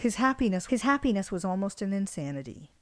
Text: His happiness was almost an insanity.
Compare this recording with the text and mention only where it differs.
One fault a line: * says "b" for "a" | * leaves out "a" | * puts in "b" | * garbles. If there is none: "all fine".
* puts in "his happiness"